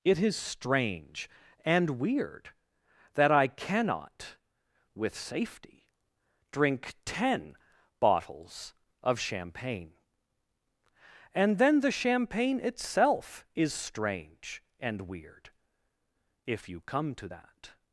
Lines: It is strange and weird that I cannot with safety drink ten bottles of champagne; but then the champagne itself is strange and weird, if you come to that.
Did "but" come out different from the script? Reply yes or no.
yes